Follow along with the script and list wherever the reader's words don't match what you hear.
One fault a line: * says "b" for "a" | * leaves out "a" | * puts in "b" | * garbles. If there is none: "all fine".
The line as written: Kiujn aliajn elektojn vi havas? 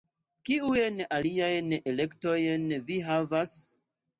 all fine